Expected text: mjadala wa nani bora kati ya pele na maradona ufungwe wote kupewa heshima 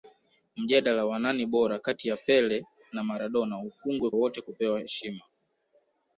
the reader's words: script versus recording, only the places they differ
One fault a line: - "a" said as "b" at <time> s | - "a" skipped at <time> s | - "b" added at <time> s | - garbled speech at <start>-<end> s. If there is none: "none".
none